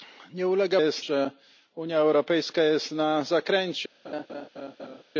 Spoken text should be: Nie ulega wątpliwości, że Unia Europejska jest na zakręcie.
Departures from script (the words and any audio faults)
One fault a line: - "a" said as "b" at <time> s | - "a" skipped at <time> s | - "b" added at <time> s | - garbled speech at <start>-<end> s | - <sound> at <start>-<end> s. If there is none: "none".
- "wątpliwości" said as "jest" at 0.7 s
- laugh at 4.0-5.0 s